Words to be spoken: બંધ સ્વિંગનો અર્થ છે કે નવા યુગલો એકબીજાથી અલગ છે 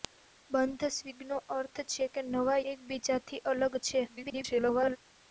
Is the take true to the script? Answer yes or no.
no